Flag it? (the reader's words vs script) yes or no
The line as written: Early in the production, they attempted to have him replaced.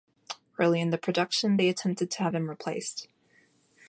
no